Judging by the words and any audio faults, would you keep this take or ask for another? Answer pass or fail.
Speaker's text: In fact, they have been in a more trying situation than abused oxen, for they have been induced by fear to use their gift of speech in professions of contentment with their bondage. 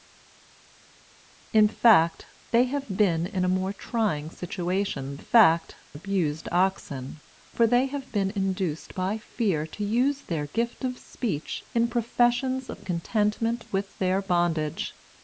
fail